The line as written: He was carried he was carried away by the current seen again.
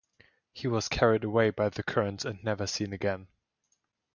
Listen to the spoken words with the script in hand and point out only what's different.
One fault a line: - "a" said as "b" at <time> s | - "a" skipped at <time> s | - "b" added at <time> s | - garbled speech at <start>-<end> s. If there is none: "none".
- "he was carried" skipped at 1.2 s
- "and never" added at 2.2 s